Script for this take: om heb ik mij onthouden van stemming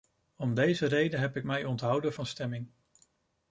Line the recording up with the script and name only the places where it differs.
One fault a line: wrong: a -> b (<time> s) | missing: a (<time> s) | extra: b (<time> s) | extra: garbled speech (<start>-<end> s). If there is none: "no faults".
extra: deze reden (0.5 s)